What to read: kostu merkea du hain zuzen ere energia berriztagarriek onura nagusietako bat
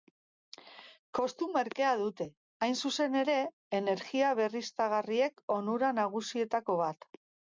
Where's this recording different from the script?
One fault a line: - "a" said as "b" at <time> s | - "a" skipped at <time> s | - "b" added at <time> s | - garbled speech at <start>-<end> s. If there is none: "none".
- "du" said as "dute" at 2.0 s